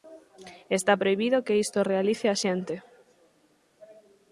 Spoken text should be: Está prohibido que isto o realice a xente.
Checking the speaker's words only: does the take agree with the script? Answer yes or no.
yes